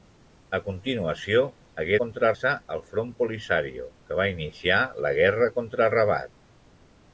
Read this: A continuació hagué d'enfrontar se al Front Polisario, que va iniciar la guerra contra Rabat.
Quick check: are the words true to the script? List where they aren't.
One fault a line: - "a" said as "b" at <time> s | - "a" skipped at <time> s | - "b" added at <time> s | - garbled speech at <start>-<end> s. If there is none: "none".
- "d'enfrontar" said as "contra" at 2.0 s